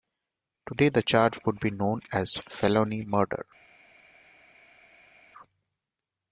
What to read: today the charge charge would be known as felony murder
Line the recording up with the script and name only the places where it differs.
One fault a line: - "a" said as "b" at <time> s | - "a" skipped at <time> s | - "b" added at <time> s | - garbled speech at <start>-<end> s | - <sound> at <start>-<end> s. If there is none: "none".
- "charge" skipped at 1.4 s